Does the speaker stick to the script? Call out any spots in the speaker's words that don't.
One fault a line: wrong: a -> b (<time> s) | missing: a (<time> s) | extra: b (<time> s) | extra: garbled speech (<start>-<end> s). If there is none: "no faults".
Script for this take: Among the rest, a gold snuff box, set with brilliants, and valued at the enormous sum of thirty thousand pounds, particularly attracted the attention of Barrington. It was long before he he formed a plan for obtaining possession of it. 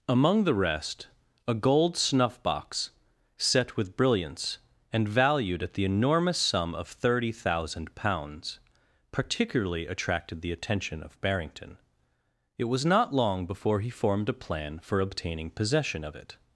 extra: not (12.8 s)
missing: he (13.9 s)